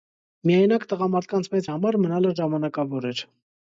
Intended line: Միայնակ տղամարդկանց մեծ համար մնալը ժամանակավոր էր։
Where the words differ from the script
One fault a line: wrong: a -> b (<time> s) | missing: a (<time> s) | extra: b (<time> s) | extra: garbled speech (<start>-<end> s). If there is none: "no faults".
no faults